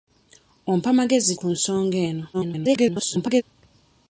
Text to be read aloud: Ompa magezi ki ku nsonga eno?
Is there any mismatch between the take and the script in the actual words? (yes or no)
yes